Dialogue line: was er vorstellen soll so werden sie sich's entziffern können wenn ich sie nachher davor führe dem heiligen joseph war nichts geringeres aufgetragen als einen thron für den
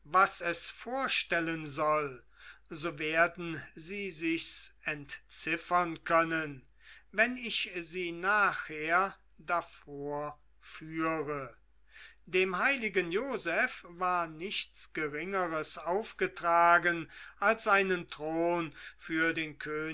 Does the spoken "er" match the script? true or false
false